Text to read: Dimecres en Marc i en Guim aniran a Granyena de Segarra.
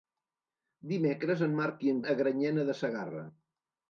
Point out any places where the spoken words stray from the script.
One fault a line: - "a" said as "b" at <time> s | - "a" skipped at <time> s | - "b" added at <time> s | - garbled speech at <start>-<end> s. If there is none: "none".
- "Guim aniran" skipped at 2.0 s